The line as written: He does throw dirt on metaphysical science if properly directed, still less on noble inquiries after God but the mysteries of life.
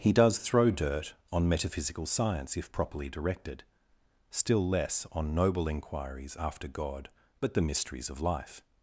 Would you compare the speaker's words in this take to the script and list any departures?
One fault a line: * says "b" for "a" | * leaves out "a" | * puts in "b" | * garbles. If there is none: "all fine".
all fine